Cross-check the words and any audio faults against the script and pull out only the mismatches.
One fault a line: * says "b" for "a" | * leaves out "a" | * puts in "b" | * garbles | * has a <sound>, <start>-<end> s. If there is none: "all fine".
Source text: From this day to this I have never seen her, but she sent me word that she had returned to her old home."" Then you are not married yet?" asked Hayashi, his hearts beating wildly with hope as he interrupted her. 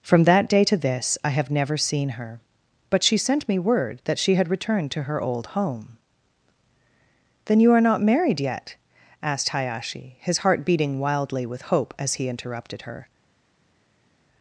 * says "that" for "this"
* says "heart" for "hearts"